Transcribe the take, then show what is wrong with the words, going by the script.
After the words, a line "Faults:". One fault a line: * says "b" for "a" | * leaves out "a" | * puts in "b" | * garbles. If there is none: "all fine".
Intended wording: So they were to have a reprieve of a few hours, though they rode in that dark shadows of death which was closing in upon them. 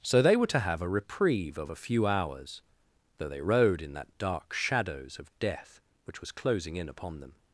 So they were to have a reprieve of a few hours, though they rode in that dark shadows of death which was closing in upon them.
Faults:
all fine